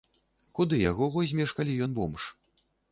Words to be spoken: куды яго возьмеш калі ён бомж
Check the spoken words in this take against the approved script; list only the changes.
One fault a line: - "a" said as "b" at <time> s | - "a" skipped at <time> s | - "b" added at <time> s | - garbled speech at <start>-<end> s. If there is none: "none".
none